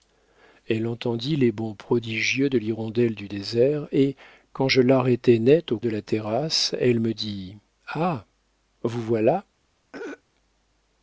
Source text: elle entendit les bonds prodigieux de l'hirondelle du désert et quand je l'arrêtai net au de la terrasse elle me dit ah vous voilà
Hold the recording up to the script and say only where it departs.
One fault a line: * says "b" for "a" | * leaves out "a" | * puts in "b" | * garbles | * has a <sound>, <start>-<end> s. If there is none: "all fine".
* has a throat clearing, 9.9-10.2 s